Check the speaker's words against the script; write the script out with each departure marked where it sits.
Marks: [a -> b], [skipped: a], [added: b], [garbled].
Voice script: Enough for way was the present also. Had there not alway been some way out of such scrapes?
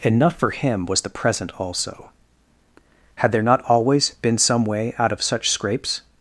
Enough for [way -> him] was the present also. Had there not [alway -> always] been some way out of such scrapes?